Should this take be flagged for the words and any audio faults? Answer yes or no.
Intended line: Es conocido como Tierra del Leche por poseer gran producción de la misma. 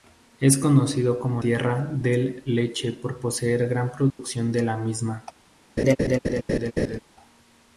yes